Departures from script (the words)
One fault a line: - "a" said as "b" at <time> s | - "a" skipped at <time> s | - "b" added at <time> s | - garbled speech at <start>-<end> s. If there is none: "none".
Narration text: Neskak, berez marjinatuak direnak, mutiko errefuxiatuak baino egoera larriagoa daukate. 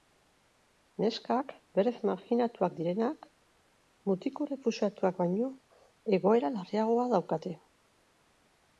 none